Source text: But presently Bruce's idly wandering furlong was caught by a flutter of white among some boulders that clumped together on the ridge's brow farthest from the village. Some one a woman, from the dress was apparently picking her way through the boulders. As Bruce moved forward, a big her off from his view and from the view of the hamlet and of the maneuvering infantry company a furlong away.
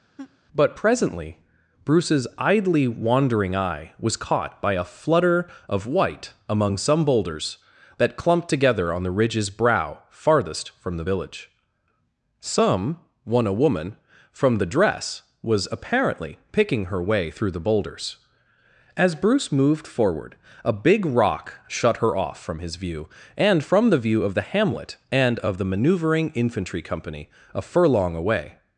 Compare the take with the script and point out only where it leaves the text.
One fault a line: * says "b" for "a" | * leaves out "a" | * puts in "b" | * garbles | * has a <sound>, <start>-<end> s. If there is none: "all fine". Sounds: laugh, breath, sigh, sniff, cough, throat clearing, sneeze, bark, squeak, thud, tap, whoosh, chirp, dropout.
* has a laugh, 0.2-0.4 s
* says "eye" for "furlong"
* puts in "rock shut"